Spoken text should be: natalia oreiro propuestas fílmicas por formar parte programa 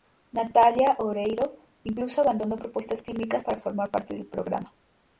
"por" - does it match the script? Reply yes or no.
no